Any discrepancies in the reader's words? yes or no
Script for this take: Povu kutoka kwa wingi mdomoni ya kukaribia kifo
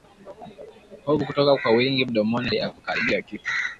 no